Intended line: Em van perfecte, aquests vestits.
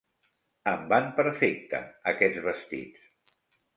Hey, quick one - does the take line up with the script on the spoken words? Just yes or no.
yes